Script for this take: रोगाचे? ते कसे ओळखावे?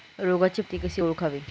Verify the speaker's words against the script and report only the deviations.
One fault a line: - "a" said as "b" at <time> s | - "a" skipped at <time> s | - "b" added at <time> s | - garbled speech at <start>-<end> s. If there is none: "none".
none